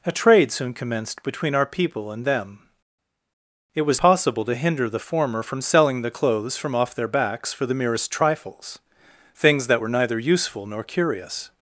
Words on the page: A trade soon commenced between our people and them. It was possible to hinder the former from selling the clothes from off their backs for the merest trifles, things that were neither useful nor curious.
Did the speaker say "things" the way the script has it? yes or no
yes